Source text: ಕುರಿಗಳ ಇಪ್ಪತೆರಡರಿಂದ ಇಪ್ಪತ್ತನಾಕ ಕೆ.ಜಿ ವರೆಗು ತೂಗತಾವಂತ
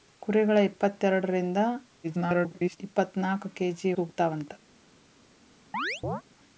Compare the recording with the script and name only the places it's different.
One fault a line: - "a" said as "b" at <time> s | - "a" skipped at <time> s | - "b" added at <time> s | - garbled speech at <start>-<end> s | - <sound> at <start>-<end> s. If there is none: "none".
- garbled speech at 2.0-2.8 s
- "ವರೆಗು" skipped at 3.9 s
- chirp at 5.7-6.2 s